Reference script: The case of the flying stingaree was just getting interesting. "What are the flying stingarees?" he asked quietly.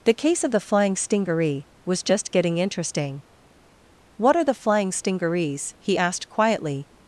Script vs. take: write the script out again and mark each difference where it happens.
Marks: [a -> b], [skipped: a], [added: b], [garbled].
The case of the flying stingaree was just getting interesting. "What are the flying stingarees?" he asked quietly.